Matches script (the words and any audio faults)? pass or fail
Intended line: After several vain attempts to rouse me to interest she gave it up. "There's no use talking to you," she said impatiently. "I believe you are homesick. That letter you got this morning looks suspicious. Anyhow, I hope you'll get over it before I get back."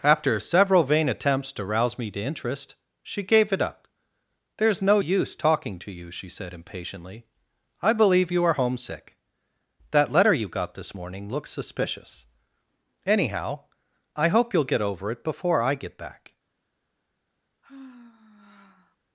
fail